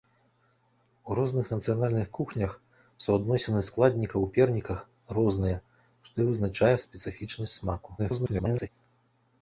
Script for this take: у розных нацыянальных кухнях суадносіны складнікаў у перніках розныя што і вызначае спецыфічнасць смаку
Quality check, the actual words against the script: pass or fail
fail